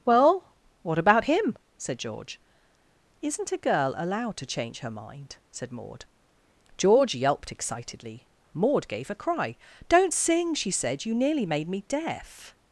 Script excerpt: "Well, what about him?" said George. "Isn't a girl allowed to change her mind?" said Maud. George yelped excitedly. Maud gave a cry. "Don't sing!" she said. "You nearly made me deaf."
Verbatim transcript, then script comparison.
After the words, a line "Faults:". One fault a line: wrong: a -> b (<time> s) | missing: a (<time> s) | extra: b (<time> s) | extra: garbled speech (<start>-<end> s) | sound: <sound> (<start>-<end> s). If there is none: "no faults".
"Well, what about him?" said George. "Isn't a girl allowed to change her mind?" said Maud. George yelped excitedly. Maud gave a cry. "Don't sing!" she said. "You nearly made me deaf."
Faults:
no faults